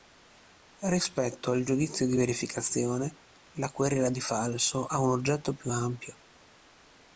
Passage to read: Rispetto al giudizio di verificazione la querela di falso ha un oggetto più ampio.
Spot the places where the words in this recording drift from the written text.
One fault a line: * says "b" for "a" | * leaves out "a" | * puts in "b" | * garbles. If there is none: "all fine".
all fine